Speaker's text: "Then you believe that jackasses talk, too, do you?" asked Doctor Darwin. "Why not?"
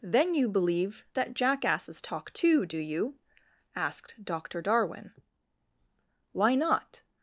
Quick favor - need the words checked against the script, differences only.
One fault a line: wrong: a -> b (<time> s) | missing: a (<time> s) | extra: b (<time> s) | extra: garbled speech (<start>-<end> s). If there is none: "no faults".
no faults